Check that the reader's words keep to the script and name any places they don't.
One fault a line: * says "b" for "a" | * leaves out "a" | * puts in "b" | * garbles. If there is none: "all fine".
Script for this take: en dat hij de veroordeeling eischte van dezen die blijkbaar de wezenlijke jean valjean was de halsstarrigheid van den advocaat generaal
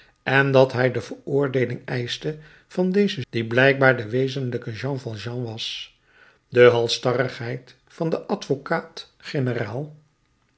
all fine